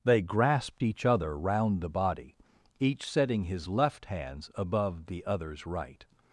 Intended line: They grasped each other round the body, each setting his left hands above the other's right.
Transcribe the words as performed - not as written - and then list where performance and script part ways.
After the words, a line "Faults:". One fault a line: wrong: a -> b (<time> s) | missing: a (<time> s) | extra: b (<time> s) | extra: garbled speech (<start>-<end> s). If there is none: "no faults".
They grasped each other round the body, each setting his left hands above the other's right.
Faults:
no faults